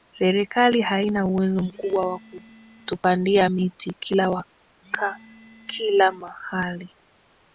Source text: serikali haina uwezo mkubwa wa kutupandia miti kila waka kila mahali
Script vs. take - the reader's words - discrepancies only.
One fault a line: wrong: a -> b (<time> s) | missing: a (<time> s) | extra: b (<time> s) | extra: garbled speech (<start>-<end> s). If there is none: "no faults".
no faults